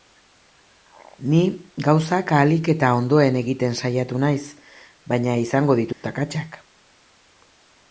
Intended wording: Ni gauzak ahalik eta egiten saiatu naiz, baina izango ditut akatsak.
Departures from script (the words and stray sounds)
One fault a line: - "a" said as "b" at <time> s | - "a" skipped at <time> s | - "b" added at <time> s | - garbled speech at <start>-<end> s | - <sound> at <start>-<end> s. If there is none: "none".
- "ondoen" added at 3.0 s
- dropout at 5.9-6.0 s